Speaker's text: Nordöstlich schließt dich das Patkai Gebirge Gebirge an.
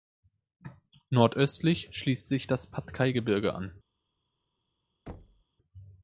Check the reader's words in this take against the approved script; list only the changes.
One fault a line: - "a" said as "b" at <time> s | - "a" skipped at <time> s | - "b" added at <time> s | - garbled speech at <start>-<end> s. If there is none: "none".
- "dich" said as "sich" at 2.3 s
- "Gebirge" skipped at 3.5 s